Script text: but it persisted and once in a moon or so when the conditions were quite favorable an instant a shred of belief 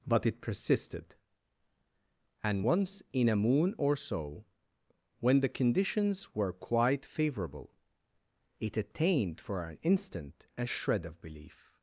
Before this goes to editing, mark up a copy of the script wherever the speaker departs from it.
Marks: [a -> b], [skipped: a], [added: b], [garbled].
but it persisted and once in a moon or so when the conditions were quite favorable [added: it attained for] an instant a shred of belief